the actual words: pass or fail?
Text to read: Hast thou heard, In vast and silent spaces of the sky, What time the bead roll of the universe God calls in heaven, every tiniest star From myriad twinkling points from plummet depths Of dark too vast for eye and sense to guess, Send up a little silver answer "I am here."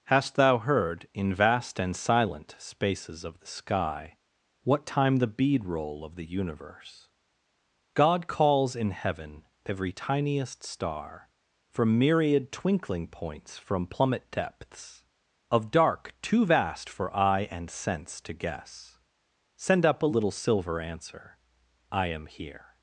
pass